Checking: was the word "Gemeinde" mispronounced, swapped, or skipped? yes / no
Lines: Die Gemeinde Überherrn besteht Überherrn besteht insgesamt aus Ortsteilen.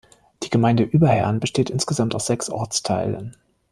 no